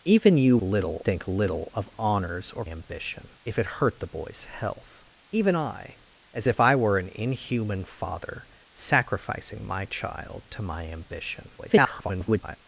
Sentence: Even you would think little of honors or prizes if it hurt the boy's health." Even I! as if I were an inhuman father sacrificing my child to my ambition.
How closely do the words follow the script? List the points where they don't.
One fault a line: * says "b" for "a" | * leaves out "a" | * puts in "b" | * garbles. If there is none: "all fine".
* says "little" for "would"
* says "ambition" for "prizes"
* garbles